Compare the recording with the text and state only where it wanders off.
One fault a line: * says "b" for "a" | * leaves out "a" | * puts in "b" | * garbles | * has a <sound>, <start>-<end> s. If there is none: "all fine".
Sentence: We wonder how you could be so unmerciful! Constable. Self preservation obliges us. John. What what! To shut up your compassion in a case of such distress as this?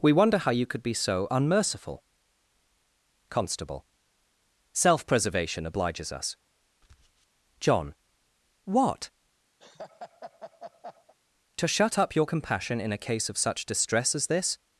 * leaves out "what"
* has a laugh, 9.6-11.1 s